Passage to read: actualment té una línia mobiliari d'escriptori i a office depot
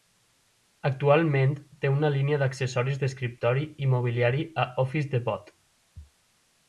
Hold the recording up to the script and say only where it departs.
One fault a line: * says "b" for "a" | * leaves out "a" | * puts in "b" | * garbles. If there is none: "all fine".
* says "d'accessoris" for "mobiliari"
* puts in "mobiliari"